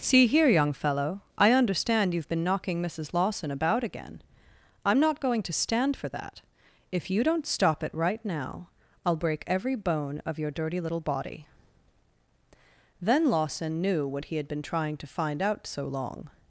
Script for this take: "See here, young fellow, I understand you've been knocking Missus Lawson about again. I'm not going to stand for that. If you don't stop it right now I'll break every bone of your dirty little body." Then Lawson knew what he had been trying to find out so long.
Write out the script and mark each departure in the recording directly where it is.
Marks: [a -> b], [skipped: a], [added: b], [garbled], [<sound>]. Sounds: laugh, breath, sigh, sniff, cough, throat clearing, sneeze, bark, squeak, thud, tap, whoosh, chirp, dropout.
"See here, young fellow, I understand you've been knocking Missus Lawson about again. I'm not going to stand for that. If you don't stop it right now I'll break every bone of your dirty little body." Then Lawson knew what he had been trying to find out so long.